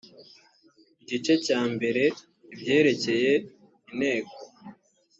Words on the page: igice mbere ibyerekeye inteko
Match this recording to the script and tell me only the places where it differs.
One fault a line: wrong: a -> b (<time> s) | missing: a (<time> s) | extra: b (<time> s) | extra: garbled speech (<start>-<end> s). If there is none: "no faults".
extra: cya (1.4 s)